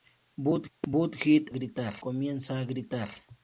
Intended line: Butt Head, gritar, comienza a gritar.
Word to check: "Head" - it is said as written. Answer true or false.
true